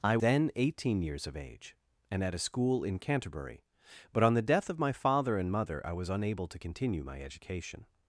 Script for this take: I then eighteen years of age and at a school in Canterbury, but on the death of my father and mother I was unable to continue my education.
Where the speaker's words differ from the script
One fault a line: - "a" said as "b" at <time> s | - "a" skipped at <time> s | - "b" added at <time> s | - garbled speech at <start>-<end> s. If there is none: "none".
none